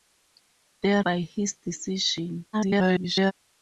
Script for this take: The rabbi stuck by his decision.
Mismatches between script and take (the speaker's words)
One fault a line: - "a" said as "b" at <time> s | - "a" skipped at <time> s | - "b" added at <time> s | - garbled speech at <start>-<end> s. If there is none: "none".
- "rabbi stuck" skipped at 1.0 s
- garbled speech at 2.5-3.3 s